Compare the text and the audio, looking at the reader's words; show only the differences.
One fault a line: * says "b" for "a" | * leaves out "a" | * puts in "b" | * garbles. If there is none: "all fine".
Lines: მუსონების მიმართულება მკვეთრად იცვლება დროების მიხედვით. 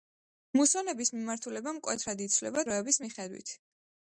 all fine